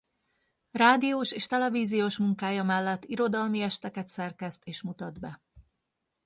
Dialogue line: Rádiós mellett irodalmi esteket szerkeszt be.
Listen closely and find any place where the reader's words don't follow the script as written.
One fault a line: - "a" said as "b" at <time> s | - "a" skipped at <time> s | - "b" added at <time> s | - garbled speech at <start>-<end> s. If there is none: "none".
- "és televíziós munkája" added at 1.3 s
- "és mutat" added at 4.6 s